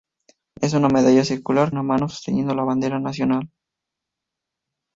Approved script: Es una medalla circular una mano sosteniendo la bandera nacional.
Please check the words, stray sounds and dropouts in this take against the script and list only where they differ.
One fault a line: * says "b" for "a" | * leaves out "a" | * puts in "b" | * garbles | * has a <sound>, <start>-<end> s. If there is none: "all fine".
all fine